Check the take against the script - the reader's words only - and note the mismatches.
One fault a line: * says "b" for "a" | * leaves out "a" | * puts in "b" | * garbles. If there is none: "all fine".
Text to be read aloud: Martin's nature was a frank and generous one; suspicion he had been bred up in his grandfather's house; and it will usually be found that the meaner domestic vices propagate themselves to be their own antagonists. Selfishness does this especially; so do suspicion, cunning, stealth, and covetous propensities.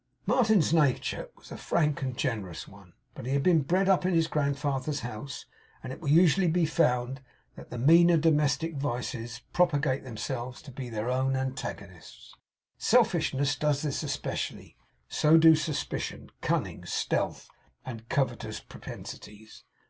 * says "but" for "suspicion"